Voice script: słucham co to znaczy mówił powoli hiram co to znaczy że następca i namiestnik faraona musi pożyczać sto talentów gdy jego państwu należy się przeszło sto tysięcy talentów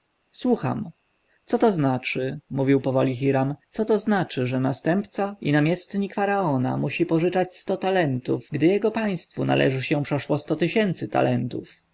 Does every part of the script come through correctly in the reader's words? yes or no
yes